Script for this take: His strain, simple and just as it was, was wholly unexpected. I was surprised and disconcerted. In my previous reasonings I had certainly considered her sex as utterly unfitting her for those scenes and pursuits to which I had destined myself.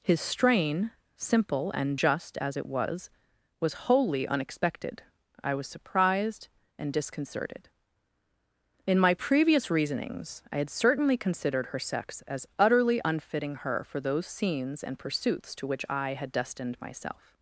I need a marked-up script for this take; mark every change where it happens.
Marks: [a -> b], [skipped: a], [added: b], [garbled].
His strain, simple and just as it was, was wholly unexpected. I was surprised and disconcerted. In my previous reasonings I had certainly considered her sex as utterly unfitting her for those scenes and pursuits to which I had destined myself.